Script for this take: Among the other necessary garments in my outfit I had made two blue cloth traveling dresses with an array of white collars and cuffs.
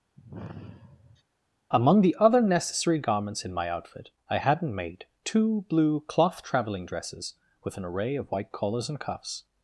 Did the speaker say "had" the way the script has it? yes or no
no